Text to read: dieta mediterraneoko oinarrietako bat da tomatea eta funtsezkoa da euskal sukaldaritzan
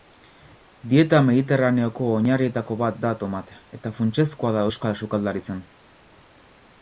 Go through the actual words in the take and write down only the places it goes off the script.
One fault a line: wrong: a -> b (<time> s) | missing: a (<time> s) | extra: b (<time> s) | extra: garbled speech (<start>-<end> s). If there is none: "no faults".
no faults